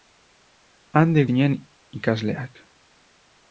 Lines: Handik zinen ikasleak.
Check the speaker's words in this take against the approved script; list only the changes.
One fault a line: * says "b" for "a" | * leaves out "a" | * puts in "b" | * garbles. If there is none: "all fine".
all fine